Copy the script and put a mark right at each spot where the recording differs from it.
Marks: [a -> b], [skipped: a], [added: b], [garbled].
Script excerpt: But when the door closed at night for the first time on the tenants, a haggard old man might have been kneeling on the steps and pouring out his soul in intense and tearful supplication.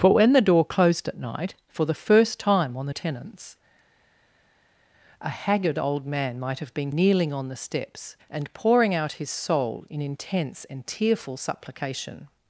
But when the door closed at night for the first time on the tenants, a haggard old man might have been kneeling on the steps and pouring out his soul in intense and tearful supplication.